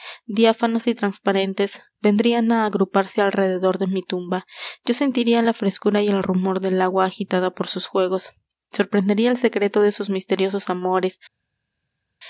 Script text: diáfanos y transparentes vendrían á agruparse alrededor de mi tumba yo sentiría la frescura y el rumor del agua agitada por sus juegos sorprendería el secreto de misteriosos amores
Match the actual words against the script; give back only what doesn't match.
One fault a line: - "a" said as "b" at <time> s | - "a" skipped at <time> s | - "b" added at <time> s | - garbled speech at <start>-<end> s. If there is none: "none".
- "sus" added at 9.9 s